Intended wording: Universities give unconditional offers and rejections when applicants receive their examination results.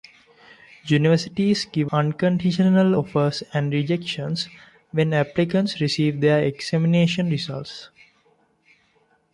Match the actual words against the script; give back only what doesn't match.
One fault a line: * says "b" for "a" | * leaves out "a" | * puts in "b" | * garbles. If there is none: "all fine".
all fine